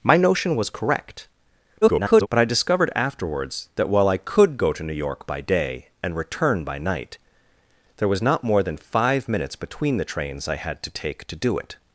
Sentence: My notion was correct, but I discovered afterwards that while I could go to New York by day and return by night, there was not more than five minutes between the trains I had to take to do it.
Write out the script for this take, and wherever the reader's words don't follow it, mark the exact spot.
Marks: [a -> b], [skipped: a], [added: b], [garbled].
My notion was correct, [garbled] but I discovered afterwards that while I could go to New York by day and return by night, there was not more than five minutes between the trains I had to take to do it.